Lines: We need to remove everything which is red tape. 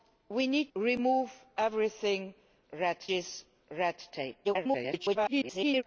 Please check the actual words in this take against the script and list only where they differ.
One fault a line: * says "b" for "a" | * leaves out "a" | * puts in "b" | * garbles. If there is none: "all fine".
* leaves out "to"
* says "red" for "which"
* garbles